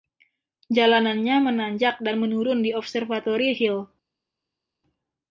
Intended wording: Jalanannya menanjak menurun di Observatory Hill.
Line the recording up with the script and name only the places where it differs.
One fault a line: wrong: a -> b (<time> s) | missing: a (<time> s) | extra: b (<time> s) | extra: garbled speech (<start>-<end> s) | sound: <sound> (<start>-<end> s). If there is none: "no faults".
extra: dan (2.0 s)